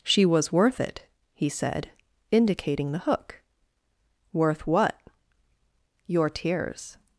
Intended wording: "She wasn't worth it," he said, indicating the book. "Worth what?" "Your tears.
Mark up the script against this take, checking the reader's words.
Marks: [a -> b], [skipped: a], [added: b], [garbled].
"She [wasn't -> was] worth it," he said, indicating the [book. -> hook] "Worth what?" "Your tears.